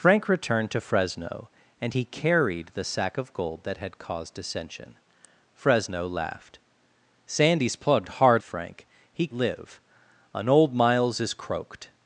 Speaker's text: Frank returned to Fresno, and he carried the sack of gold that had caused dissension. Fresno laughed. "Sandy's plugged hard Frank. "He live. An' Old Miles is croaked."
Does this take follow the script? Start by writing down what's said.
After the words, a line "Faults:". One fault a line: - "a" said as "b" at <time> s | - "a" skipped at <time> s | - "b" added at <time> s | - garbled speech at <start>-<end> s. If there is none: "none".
Frank returned to Fresno, and he carried the sack of gold that had caused dissension. Fresno laughed. "Sandy's plugged hard Frank. "He live. An' Old Miles is croaked."
Faults:
none